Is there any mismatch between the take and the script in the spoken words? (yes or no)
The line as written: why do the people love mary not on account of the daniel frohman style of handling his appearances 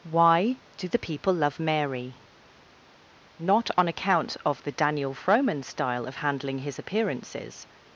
no